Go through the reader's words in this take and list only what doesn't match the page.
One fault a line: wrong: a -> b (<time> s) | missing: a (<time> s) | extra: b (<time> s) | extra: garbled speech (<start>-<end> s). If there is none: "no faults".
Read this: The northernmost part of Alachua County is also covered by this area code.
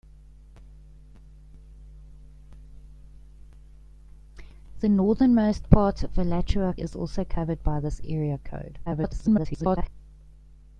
missing: County (6.7 s)
extra: garbled speech (8.9-9.9 s)